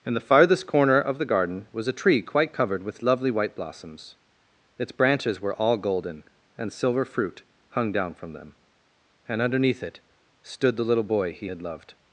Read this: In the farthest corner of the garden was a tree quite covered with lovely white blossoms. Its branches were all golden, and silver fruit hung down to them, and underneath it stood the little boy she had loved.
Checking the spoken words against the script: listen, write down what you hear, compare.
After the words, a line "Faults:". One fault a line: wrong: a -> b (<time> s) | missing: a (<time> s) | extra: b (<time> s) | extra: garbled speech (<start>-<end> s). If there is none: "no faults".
In the farthest corner of the garden was a tree quite covered with lovely white blossoms. Its branches were all golden, and silver fruit hung down from them, and underneath it stood the little boy he had loved.
Faults:
wrong: to -> from (8.1 s)
wrong: she -> he (11.3 s)